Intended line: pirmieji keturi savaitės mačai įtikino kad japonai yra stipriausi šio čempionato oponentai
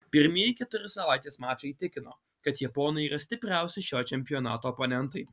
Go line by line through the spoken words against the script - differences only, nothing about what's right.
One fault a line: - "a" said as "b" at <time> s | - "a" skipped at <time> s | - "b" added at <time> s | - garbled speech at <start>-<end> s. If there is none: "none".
none